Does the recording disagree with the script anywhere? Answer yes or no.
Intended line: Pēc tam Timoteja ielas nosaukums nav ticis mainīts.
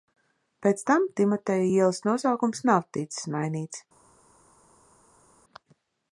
no